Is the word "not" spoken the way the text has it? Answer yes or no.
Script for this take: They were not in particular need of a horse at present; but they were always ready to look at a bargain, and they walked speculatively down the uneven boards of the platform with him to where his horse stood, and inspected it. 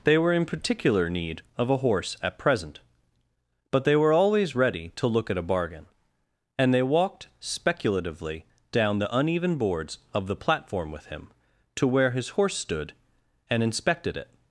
no